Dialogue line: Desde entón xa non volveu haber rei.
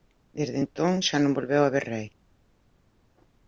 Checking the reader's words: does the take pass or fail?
pass